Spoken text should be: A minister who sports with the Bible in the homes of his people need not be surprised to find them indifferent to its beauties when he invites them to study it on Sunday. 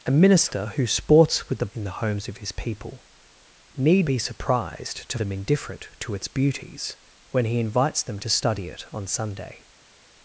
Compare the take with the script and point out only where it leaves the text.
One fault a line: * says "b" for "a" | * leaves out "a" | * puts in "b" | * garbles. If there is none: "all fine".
* leaves out "Bible"
* leaves out "not"
* leaves out "find"